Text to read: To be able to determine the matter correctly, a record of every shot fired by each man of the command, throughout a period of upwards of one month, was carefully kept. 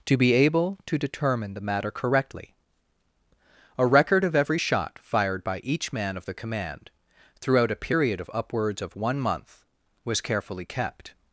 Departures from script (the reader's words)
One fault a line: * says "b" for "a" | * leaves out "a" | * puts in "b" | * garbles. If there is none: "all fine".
all fine